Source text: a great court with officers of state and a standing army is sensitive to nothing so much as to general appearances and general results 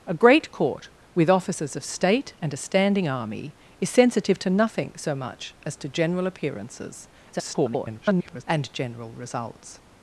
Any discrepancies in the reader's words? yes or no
yes